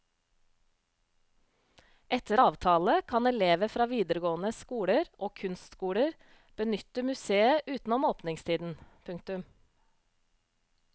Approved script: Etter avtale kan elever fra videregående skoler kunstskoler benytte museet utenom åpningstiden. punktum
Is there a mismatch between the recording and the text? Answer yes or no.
yes